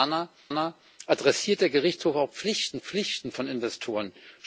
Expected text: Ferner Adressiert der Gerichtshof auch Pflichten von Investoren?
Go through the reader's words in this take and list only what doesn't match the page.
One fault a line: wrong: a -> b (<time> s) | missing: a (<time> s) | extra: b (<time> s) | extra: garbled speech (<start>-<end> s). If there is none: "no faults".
extra: ferner (0.5 s)
extra: Pflichten (2.8 s)